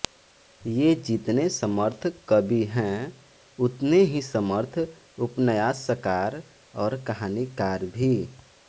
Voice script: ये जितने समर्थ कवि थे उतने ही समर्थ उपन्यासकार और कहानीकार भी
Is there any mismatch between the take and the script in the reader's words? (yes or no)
yes